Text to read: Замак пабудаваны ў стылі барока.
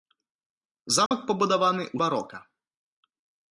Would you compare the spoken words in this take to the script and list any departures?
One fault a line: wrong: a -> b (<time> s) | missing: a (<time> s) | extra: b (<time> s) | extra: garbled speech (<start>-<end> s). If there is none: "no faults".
missing: стылі (2.0 s)